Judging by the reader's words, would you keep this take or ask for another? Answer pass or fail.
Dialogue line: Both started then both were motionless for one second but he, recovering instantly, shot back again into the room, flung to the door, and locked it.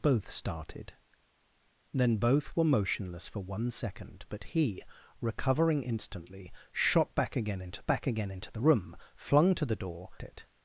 fail